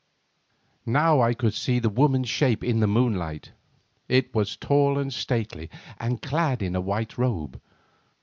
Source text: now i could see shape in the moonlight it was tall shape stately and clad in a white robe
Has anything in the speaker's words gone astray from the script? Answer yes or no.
yes